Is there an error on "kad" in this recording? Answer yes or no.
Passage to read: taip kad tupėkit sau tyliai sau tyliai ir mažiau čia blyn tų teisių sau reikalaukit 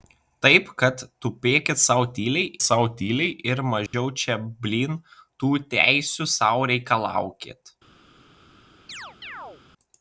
no